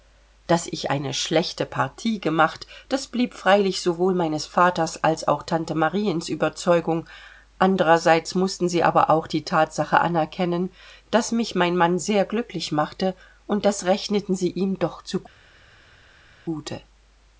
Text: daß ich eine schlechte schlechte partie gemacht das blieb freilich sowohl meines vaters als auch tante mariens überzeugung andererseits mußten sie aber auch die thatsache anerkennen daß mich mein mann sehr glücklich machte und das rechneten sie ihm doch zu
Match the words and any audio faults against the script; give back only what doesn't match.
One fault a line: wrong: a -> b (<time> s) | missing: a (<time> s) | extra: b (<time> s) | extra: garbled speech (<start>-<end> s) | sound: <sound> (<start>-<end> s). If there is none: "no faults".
missing: schlechte (1.7 s)